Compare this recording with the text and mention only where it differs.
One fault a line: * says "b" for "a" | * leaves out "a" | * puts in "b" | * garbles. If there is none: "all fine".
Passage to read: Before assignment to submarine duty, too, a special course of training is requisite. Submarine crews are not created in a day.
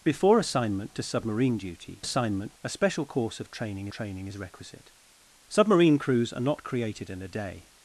* says "assignment" for "too"
* puts in "training"